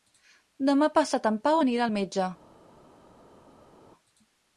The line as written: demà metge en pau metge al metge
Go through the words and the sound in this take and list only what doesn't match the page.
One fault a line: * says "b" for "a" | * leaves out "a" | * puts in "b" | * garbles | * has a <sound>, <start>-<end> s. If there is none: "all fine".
* says "passat" for "metge"
* says "anirà" for "metge"